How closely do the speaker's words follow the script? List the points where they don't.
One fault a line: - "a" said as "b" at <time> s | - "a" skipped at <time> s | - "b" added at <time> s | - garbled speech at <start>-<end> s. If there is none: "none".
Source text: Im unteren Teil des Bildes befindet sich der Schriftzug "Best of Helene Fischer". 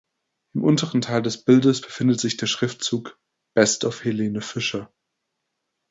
none